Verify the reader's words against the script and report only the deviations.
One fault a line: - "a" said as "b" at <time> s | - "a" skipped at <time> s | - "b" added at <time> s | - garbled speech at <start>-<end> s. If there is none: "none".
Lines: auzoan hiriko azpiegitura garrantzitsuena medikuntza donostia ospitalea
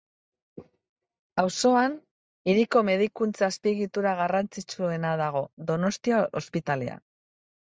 - "medikuntza" added at 2.9 s
- "medikuntza" said as "dago" at 5.2 s